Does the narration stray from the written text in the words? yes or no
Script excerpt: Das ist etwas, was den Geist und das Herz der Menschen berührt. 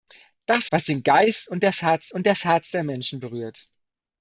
yes